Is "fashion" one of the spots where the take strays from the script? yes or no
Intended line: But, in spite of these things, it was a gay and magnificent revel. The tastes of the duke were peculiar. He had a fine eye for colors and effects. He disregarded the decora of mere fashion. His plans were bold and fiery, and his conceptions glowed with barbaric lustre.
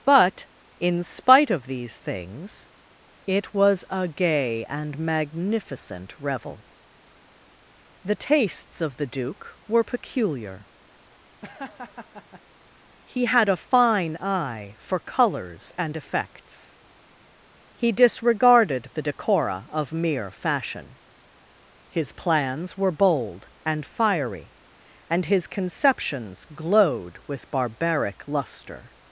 no